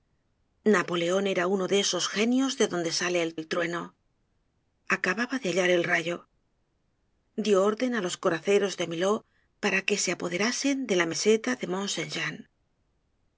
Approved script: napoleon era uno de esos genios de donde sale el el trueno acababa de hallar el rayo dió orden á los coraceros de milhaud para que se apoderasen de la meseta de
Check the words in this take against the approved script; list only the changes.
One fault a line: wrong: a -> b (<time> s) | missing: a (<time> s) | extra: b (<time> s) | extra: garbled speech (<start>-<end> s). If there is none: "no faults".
no faults